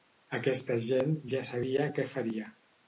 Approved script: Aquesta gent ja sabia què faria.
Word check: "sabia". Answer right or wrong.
right